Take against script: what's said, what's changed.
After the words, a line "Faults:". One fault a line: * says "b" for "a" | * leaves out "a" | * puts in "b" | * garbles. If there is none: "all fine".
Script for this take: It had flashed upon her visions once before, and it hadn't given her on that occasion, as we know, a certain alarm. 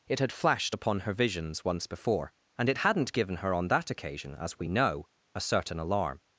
It had flashed upon her visions once before, and it hadn't given her on that occasion, as we know, a certain alarm.
Faults:
all fine